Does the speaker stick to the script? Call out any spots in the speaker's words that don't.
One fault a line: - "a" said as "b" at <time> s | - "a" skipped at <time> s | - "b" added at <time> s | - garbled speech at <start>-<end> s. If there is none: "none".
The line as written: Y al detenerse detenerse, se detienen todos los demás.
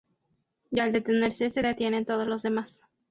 - "detenerse" skipped at 1.5 s